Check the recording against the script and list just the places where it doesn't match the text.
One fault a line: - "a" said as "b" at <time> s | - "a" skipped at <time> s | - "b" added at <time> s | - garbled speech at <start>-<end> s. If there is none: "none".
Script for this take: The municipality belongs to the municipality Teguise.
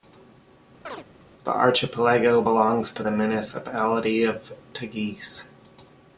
- "municipality" said as "archipelago" at 1.5 s
- "of" added at 4.2 s